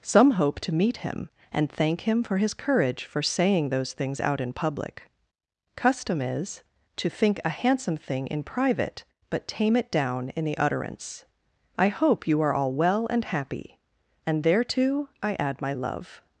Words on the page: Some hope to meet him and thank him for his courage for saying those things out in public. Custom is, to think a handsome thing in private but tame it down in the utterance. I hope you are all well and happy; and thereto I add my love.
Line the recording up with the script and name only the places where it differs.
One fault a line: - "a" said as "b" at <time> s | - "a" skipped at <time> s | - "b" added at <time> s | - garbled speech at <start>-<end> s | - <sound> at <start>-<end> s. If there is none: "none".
none